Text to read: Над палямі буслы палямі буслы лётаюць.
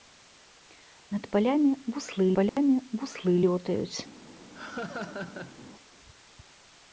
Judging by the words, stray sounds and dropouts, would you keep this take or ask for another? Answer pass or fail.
fail